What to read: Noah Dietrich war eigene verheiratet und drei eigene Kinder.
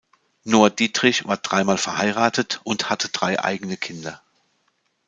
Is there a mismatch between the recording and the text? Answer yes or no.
yes